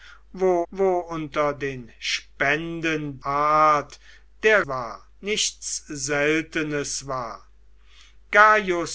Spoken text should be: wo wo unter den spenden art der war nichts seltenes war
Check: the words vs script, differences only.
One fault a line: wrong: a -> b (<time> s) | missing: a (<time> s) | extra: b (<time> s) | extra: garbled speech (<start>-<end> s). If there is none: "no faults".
no faults